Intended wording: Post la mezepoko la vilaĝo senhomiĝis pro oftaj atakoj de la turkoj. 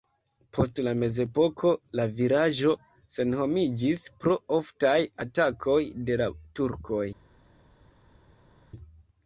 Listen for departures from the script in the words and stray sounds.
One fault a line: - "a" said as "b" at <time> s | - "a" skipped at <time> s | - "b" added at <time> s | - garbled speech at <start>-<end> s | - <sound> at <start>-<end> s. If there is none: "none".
none